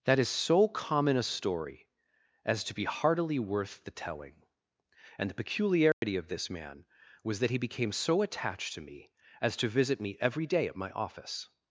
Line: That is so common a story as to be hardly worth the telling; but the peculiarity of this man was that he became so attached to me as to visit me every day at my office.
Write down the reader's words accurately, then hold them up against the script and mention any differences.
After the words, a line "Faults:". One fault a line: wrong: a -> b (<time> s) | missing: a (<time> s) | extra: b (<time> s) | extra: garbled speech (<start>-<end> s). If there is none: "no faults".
That is so common a story as to be heartily worth the telling; and the peculiarity of this man was that he became so attached to me as to visit me every day at my office.
Faults:
wrong: hardly -> heartily (2.9 s)
wrong: but -> and (5.2 s)